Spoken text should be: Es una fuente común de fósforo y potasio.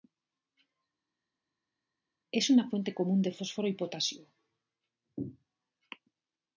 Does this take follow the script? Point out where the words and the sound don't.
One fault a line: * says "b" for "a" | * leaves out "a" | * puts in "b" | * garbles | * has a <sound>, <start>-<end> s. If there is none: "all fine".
all fine